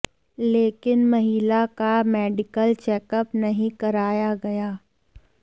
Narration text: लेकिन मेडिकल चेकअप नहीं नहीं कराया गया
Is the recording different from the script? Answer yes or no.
yes